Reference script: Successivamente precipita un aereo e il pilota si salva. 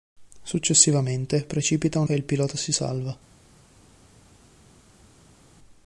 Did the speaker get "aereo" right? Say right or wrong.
wrong